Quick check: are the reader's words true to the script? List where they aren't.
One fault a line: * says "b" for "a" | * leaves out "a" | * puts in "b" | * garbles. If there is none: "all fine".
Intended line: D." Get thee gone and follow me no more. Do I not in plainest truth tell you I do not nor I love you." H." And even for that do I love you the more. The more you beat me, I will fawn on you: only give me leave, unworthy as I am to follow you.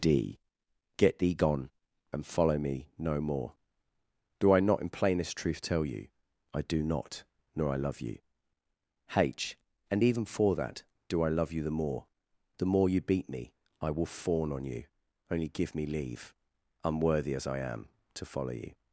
all fine